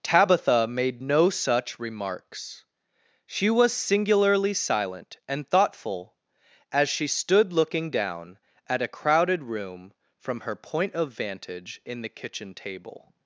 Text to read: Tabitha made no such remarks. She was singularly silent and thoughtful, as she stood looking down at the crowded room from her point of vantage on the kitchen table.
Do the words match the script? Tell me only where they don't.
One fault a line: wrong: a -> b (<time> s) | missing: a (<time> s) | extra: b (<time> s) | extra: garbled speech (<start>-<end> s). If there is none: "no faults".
wrong: the -> a (8.8 s)
wrong: on -> in (11.8 s)